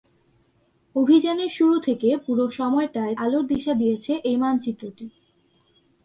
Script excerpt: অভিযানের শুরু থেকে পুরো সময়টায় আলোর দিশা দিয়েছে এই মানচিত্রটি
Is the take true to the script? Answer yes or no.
yes